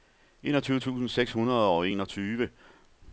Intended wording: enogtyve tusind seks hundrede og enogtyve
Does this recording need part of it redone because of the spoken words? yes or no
no